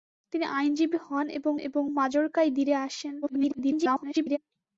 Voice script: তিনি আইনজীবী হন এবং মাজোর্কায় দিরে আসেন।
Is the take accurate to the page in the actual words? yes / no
no